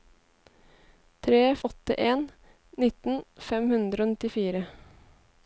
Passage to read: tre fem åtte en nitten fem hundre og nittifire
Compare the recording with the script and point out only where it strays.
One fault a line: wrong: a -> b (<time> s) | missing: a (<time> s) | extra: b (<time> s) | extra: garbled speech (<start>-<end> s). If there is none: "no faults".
missing: fem (1.4 s)